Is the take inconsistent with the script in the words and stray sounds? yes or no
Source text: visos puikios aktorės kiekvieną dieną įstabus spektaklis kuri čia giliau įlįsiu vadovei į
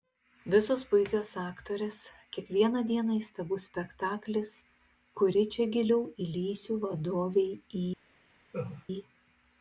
yes